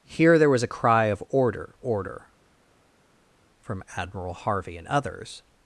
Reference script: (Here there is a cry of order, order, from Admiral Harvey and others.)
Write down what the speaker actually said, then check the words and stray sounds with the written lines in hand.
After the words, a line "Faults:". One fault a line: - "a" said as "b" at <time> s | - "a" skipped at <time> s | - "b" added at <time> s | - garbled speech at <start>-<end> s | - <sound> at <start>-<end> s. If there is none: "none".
(Here there was a cry of order, order, from Admiral Harvey and others.)
Faults:
- "is" said as "was" at 0.5 s